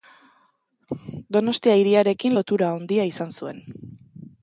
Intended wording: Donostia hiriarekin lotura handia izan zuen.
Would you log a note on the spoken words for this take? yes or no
no